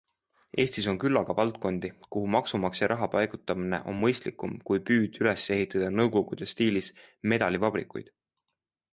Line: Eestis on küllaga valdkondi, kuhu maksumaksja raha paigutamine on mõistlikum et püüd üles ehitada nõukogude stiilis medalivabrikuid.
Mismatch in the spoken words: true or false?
true